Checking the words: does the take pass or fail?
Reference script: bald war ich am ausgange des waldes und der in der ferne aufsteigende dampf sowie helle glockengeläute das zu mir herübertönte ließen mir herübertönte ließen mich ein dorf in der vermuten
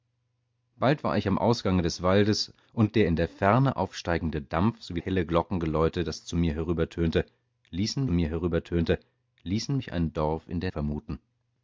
pass